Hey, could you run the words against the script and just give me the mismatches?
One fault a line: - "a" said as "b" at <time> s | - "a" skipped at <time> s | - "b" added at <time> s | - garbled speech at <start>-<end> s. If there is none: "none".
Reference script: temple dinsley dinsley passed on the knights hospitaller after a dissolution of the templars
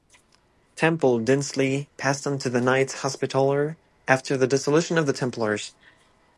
- "dinsley" skipped at 1.9 s
- "to" added at 2.4 s
- "a" said as "the" at 4.3 s